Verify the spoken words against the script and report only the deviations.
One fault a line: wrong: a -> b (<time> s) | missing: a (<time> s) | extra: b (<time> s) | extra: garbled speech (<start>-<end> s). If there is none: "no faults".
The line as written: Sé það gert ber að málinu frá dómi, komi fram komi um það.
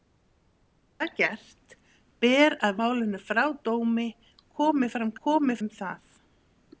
no faults